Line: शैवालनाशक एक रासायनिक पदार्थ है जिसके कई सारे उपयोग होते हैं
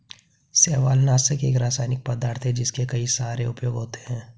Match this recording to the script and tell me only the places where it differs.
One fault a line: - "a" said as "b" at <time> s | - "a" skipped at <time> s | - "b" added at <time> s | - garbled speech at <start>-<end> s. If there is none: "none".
none